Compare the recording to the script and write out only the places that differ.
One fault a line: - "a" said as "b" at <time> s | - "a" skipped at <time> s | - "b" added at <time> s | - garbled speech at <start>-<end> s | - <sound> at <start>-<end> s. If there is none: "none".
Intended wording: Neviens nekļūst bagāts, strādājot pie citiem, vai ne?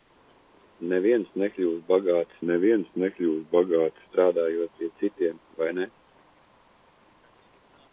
- "neviens nekļūst bagāts" added at 2.5 s